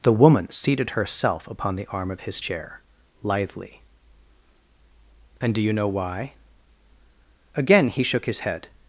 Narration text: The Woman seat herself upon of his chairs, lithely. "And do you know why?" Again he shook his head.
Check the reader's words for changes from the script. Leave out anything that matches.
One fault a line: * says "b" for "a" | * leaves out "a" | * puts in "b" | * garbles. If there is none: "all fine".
* says "seated" for "seat"
* puts in "the arm"
* says "chair" for "chairs"